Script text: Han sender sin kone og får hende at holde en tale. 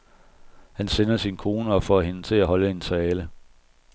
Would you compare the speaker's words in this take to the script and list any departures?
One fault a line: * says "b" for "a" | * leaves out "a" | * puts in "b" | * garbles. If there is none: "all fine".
* puts in "til"